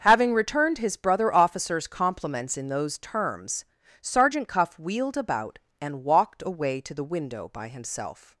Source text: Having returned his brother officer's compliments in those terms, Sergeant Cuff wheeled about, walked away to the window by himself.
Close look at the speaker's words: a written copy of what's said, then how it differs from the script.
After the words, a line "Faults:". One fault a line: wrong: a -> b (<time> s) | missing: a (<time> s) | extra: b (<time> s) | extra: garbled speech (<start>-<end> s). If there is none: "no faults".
Having returned his brother officer's compliments in those terms, Sergeant Cuff wheeled about, and walked away to the window by himself.
Faults:
extra: and (5.8 s)